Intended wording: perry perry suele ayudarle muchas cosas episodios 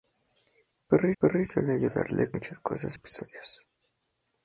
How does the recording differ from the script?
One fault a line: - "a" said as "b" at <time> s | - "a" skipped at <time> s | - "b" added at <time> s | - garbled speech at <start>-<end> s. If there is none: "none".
none